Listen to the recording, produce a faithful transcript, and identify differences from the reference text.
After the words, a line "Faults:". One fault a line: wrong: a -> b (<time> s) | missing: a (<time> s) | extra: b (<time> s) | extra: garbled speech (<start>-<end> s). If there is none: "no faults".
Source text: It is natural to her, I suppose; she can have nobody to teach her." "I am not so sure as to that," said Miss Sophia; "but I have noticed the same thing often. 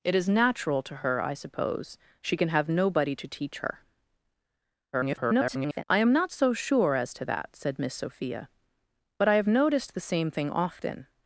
It is natural to her, I suppose; she can have nobody to teach her." [garbled] "I am not so sure as to that," said Miss Sophia; "but I have noticed the same thing often.
Faults:
extra: garbled speech (4.9-5.8 s)